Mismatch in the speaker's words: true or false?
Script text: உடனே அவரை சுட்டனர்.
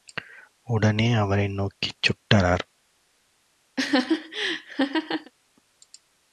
true